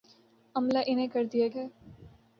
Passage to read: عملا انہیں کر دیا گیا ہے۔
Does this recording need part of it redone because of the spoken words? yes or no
yes